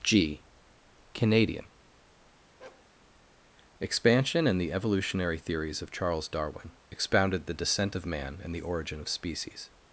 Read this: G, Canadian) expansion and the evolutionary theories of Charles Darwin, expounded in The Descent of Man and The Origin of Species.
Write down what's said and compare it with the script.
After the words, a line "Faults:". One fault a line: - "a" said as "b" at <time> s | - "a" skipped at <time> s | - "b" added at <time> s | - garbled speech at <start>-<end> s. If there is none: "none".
G, Canadian) expansion and the evolutionary theories of Charles Darwin, expounded The Descent of Man and The Origin of Species.
Faults:
- "in" skipped at 7.5 s